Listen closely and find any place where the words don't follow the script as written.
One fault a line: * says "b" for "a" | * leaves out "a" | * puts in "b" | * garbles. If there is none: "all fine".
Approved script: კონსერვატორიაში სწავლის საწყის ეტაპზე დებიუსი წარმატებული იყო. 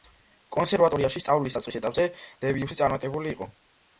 all fine